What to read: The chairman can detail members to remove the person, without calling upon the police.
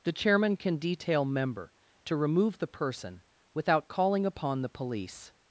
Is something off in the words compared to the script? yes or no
yes